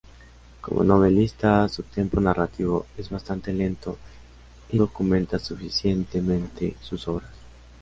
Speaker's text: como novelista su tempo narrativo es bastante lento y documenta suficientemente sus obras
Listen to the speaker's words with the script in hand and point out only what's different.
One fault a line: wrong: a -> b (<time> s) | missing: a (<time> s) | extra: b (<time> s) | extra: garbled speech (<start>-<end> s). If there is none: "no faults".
no faults